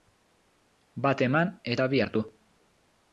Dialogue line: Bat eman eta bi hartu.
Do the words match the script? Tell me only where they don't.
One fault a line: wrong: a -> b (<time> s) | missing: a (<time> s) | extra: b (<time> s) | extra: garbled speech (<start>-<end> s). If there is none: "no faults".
no faults